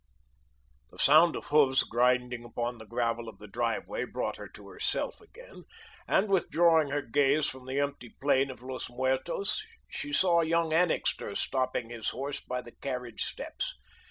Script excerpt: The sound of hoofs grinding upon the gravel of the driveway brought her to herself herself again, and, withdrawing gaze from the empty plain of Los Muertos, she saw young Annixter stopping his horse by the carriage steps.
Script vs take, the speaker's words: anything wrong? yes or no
yes